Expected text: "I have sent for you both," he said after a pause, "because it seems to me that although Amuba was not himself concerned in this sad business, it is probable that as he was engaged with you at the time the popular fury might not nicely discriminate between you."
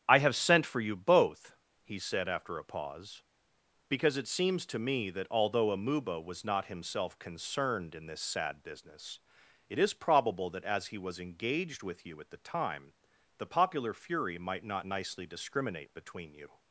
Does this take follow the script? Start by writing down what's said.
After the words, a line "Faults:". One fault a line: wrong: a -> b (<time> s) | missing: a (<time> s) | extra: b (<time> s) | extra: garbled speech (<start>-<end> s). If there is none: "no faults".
"I have sent for you both," he said after a pause, "because it seems to me that although Amuba was not himself concerned in this sad business, it is probable that as he was engaged with you at the time the popular fury might not nicely discriminate between you."
Faults:
no faults